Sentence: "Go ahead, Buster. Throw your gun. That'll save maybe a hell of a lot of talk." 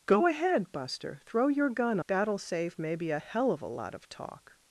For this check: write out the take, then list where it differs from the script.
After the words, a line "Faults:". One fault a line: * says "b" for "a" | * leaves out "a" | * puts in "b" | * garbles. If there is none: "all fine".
"Go ahead, Buster. Throw your gun. That'll save maybe a hell of a lot of talk."
Faults:
all fine